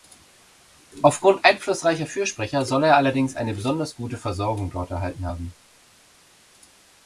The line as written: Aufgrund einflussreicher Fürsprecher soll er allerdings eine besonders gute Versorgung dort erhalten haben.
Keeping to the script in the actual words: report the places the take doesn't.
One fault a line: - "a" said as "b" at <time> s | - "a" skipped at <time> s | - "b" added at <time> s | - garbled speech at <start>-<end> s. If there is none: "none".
none